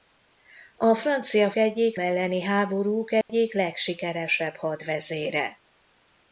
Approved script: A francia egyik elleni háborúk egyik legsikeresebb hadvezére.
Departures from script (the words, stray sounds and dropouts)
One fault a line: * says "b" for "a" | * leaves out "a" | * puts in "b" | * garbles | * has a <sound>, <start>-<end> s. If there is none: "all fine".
* has a dropout, 3.2-3.3 s